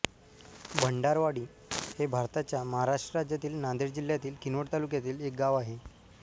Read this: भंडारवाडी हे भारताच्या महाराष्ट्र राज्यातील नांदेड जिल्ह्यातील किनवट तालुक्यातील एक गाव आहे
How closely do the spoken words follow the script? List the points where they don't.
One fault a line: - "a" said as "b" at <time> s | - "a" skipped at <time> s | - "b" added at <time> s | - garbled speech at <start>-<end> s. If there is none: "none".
none